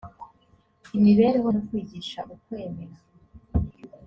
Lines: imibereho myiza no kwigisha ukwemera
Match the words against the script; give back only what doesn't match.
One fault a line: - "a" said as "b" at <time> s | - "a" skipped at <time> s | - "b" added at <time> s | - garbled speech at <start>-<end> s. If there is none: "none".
- "myiza" skipped at 1.5 s